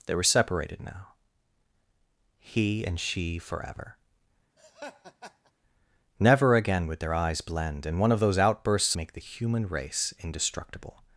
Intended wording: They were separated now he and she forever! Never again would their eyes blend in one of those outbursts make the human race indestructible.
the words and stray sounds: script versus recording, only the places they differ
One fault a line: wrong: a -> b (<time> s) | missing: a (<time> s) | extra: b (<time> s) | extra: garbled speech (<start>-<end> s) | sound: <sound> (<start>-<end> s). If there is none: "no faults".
sound: laugh (4.6-5.5 s)